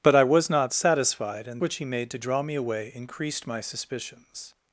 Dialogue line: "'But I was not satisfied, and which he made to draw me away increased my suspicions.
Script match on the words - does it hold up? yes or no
yes